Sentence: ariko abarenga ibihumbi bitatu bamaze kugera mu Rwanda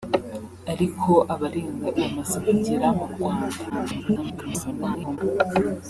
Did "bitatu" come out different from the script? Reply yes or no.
yes